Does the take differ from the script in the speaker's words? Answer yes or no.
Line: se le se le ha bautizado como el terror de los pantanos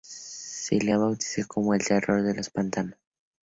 yes